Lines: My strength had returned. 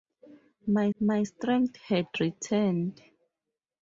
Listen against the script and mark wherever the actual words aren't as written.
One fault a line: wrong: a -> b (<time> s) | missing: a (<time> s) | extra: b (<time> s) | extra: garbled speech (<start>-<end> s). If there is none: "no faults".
extra: my (1.0 s)